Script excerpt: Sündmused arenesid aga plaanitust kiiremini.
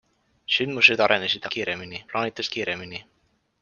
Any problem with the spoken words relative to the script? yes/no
yes